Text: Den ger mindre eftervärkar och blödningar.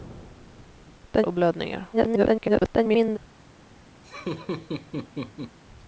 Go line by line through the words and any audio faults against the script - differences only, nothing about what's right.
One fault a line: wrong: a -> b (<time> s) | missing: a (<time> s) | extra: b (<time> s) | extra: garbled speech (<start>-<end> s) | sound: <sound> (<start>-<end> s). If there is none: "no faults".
missing: ger mindre eftervärkar (1.3 s)
extra: garbled speech (1.9-3.2 s)
sound: laugh (4.0-5.6 s)